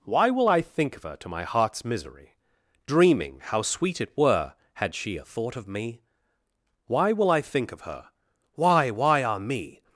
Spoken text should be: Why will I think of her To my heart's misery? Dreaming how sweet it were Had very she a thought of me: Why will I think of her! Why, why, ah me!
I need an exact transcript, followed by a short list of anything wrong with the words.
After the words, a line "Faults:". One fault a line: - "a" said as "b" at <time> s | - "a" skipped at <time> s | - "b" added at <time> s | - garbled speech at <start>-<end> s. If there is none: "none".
Why will I think of her To my heart's misery? Dreaming how sweet it were Had she a thought of me: Why will I think of her! Why, why, ah me!
Faults:
- "very" skipped at 5.0 s